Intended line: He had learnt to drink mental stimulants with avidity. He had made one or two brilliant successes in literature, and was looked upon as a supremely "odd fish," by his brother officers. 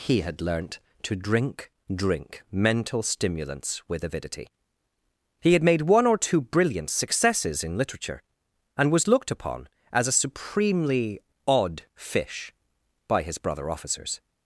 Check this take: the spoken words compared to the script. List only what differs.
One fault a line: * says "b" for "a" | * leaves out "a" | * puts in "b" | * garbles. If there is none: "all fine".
* puts in "drink"